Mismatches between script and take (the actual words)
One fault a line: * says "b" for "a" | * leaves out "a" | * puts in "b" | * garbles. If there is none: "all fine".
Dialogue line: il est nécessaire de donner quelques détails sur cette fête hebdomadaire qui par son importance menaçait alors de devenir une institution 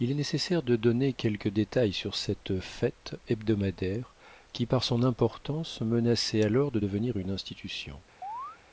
all fine